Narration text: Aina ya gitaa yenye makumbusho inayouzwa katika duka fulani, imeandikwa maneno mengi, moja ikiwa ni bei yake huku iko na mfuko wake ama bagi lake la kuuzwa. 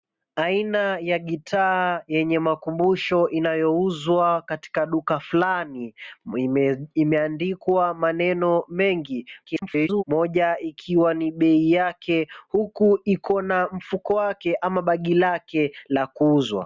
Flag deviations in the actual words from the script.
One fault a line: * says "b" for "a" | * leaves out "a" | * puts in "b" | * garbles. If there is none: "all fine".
* garbles